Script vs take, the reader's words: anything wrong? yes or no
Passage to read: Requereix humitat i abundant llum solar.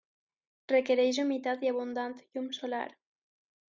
no